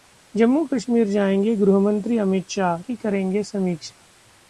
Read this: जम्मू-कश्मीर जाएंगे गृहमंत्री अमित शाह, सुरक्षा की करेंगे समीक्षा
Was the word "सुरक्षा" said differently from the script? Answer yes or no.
yes